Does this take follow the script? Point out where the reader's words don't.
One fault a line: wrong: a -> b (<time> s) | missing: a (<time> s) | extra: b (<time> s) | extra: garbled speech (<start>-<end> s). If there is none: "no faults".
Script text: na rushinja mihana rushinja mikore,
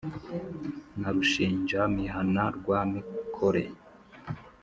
wrong: rushinja -> rwa (2.6 s)